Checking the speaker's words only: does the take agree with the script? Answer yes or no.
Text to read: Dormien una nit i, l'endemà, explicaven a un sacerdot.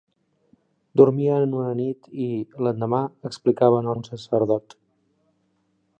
yes